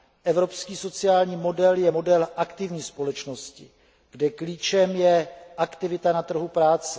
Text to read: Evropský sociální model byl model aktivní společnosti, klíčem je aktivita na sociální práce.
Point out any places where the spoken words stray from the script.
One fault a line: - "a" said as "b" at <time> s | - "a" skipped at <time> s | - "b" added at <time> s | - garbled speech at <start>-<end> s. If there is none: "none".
- "byl" said as "je" at 1.8 s
- "kde" added at 4.1 s
- "sociální" said as "trhu" at 6.2 s